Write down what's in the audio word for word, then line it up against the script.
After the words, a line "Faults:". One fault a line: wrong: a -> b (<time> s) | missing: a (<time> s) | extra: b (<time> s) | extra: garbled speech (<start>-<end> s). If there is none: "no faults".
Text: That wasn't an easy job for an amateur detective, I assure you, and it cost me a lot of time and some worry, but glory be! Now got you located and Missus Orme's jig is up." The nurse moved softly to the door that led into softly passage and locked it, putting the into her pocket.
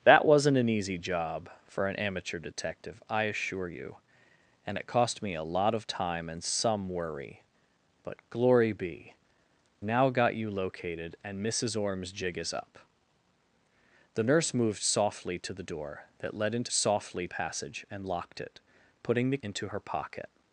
That wasn't an easy job for an amateur detective, I assure you, and it cost me a lot of time and some worry, but glory be! Now got you located and Missus Orme's jig is up." The nurse moved softly to the door that led into softly passage and locked it, putting the into her pocket.
Faults:
no faults